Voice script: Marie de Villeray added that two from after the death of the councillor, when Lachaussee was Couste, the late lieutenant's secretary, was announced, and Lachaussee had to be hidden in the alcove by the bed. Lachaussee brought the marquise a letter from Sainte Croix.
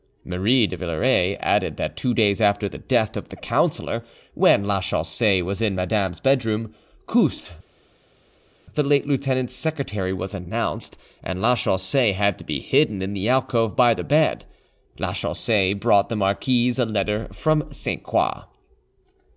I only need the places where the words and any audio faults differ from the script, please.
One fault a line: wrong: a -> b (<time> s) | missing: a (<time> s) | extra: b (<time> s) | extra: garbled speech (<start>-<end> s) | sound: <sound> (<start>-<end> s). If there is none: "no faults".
wrong: from -> days (2.1 s)
extra: in Madame's bedroom (5.6 s)